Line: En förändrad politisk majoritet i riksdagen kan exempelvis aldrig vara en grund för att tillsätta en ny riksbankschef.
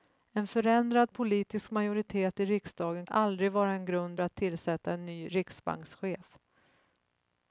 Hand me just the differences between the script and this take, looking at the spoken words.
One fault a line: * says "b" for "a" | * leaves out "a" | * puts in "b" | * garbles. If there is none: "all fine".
* leaves out "kan exempelvis"
* leaves out "för"